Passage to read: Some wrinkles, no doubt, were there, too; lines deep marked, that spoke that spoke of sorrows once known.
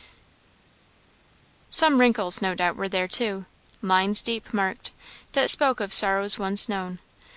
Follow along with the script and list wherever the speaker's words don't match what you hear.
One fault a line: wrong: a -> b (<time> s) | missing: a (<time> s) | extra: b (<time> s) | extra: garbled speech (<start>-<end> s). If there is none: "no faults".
missing: that spoke (5.8 s)